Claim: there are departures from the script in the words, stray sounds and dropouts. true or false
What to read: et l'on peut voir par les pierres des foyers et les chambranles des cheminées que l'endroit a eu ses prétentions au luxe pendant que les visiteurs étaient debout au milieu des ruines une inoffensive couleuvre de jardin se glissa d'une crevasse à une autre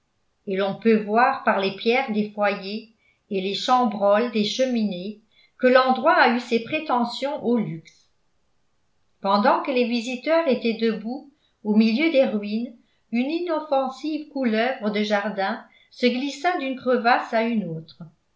false